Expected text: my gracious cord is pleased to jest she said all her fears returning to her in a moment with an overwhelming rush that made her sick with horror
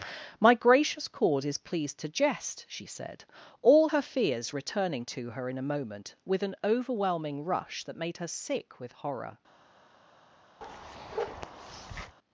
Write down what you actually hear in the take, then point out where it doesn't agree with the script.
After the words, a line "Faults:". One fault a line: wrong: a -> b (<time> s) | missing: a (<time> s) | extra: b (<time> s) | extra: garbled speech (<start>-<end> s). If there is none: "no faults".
my gracious cord is pleased to jest she said all her fears returning to her in a moment with an overwhelming rush that made her sick with horror
Faults:
no faults